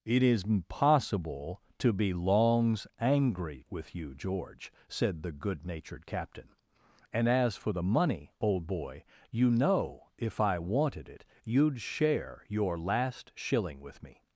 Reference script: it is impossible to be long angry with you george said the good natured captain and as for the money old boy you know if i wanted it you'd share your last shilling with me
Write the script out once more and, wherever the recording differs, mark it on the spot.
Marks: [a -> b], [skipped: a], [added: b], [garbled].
it is impossible to be [long -> longs] angry with you george said the good natured captain and as for the money old boy you know if i wanted it you'd share your last shilling with me